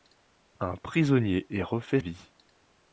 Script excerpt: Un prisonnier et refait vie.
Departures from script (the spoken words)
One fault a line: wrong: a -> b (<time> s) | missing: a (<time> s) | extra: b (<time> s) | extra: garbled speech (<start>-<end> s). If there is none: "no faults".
no faults